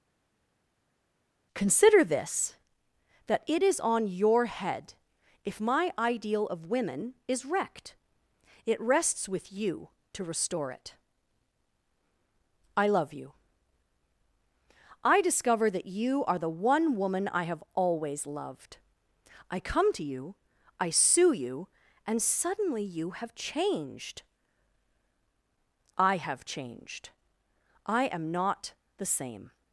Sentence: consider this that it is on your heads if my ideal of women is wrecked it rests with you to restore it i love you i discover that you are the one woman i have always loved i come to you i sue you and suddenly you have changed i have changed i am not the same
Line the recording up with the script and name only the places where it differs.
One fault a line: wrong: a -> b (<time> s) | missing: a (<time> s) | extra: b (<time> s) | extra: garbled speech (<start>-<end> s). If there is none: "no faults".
wrong: heads -> head (4.5 s)